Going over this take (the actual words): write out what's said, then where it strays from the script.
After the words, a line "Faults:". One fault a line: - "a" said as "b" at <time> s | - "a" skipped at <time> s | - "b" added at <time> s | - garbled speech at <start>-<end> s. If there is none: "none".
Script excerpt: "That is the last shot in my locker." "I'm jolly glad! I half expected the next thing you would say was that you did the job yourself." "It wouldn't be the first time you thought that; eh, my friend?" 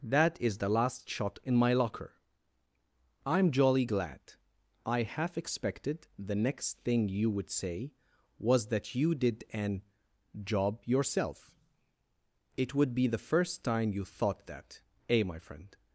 "That is the last shot in my locker." "I'm jolly glad! I half expected the next thing you would say was that you did an job yourself." "It would be the first time you thought that; eh, my friend?"
Faults:
- "the" said as "an" at 9.5 s
- "wouldn't" said as "would" at 12.7 s